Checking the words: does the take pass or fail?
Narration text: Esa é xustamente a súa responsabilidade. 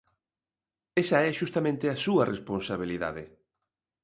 pass